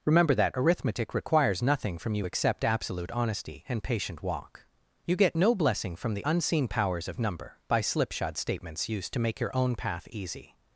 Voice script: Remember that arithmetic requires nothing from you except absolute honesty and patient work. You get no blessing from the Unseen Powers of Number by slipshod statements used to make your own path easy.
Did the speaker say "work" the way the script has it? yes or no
no